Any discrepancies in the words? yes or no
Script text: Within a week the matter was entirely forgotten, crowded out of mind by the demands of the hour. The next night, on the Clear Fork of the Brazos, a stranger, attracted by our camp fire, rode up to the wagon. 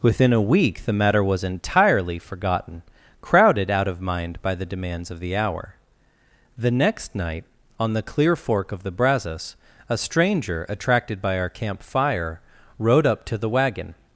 no